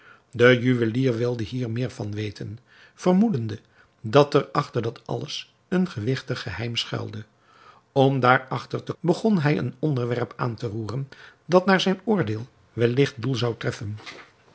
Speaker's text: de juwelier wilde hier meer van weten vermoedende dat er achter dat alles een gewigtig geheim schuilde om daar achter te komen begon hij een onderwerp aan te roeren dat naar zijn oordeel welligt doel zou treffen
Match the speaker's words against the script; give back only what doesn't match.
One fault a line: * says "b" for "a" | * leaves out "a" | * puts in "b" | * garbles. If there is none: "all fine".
* leaves out "komen"